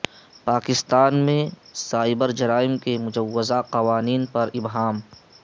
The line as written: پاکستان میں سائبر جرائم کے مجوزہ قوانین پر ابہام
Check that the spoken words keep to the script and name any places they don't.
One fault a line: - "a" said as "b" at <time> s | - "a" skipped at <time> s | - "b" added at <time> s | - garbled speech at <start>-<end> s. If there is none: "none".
none